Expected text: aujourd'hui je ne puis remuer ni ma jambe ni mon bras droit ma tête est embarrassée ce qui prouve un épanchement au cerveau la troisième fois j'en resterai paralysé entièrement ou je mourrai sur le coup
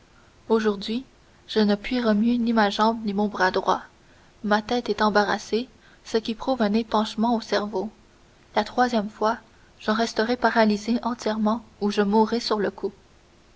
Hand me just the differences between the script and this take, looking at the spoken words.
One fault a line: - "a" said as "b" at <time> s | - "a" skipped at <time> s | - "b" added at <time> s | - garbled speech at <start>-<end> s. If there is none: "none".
none